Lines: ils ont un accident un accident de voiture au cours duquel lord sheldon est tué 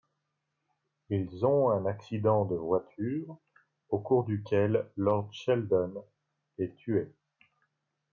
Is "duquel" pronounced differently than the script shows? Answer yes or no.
no